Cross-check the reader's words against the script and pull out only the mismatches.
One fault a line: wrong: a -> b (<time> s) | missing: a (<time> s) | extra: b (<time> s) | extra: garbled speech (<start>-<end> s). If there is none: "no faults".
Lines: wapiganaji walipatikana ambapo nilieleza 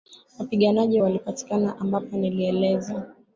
no faults